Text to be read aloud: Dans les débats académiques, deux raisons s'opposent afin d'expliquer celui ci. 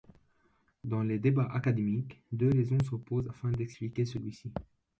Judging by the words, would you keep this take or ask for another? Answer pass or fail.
pass